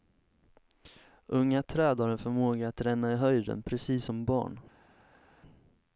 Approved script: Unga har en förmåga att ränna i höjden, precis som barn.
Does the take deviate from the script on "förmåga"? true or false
false